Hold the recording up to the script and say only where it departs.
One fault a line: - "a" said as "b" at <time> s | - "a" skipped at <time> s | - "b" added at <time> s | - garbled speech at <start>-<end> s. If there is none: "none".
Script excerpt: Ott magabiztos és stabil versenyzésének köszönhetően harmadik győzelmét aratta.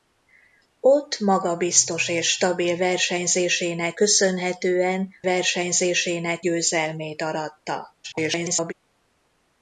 - "harmadik" said as "versenyzésének" at 5.2 s
- garbled speech at 8.0-8.7 s